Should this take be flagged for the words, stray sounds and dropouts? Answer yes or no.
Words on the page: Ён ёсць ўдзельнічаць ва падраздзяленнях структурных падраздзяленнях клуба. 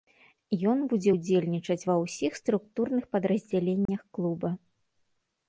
yes